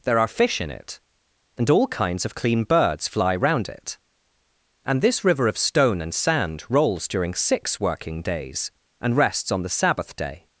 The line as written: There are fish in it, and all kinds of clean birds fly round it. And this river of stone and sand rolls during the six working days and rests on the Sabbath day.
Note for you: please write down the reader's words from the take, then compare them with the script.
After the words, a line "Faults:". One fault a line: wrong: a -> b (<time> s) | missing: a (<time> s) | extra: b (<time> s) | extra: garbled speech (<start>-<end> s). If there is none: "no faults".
There are fish in it, and all kinds of clean birds fly round it. And this river of stone and sand rolls during six working days and rests on the Sabbath day.
Faults:
missing: the (7.3 s)